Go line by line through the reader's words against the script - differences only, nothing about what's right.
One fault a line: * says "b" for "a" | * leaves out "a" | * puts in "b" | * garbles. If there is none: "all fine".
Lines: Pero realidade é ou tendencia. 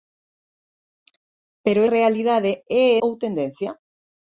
all fine